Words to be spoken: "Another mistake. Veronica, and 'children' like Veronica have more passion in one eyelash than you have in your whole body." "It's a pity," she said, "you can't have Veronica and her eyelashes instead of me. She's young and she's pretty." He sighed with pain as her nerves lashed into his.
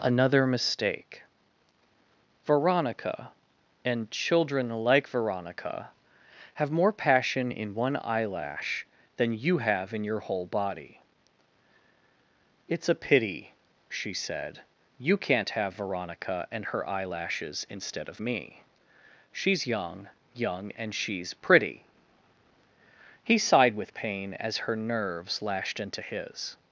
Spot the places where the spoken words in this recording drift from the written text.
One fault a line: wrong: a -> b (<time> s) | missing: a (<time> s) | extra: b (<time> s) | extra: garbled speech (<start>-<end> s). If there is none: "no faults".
extra: young (20.3 s)